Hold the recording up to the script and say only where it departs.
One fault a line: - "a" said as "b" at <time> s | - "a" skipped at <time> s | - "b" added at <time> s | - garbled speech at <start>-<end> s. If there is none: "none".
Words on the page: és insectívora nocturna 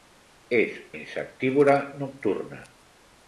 none